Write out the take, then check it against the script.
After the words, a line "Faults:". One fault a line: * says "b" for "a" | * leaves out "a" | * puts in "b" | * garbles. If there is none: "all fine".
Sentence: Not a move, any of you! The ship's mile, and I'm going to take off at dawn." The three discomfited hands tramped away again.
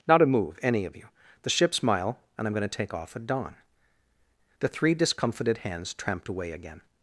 Not a move, any of you! The ship's mile, and I'm going to take off at dawn." The three discomfited hands tramped away again.
Faults:
all fine